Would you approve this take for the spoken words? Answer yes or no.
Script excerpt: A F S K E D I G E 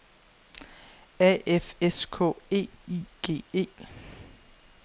no